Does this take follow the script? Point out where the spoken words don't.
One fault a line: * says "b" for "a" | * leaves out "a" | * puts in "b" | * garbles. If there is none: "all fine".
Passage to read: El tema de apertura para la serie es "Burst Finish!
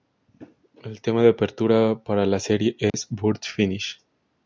all fine